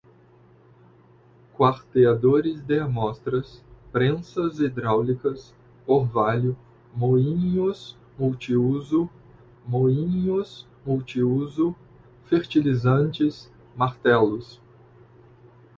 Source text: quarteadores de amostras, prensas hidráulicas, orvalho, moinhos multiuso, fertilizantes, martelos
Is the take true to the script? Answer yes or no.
no